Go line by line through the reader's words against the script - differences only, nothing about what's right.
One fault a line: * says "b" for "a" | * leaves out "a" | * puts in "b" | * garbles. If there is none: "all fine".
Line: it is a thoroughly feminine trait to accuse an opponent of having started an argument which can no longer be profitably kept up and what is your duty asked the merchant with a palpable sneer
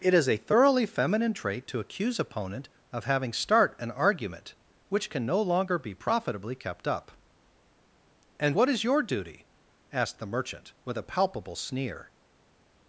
* leaves out "an"
* says "start" for "started"